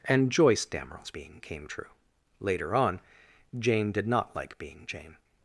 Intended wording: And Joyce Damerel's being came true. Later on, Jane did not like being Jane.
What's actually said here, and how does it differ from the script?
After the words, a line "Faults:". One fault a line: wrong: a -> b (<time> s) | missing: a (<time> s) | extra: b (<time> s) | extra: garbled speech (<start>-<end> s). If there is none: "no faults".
And Joyce Damerel's being came true. Later on, Jane did not like being Jane.
Faults:
no faults